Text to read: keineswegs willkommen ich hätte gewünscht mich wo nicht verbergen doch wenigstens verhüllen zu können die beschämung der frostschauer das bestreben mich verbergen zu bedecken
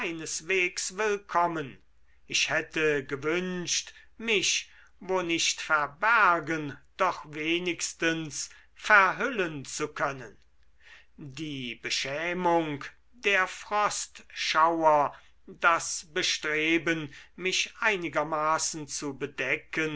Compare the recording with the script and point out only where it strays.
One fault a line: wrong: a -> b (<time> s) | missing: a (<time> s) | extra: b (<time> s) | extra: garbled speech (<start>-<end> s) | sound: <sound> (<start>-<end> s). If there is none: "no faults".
wrong: verbergen -> einigermaßen (17.8 s)